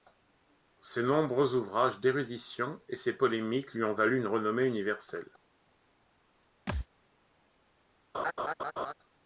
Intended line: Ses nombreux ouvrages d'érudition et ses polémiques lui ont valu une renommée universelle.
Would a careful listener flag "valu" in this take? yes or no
no